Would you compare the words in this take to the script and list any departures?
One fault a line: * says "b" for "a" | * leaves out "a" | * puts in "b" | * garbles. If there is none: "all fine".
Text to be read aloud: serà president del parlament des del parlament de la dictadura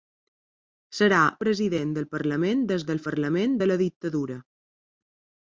all fine